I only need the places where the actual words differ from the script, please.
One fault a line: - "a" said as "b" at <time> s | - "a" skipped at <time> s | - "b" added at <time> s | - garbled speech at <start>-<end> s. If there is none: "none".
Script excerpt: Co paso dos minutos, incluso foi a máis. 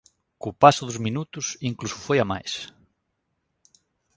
none